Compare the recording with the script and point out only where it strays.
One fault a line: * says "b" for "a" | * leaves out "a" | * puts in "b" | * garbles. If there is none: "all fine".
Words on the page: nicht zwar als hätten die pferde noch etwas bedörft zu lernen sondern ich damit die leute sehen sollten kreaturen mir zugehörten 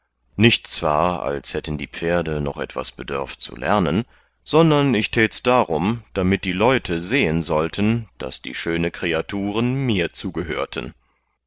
* puts in "täts darum"
* puts in "daß die schöne"